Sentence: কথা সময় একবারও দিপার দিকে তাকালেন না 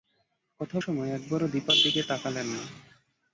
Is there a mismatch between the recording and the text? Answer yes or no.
no